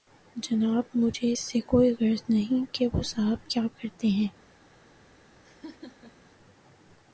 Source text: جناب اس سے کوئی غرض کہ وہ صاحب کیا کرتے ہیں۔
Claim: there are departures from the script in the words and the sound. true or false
true